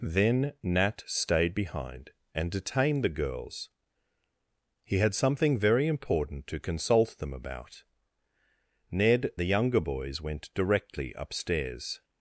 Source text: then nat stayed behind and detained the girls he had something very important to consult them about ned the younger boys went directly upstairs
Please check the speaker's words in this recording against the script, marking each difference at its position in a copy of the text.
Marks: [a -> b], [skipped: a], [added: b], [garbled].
then nat stayed behind and detained the girls he had something very important to consult them about ned the younger boys went directly upstairs